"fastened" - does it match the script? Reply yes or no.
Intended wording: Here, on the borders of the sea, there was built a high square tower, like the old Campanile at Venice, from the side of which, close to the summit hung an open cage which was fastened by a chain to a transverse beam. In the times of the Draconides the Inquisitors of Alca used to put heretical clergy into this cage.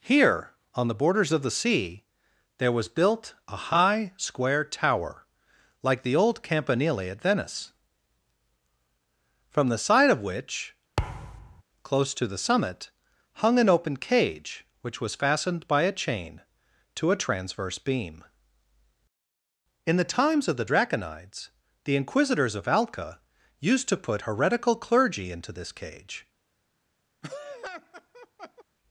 yes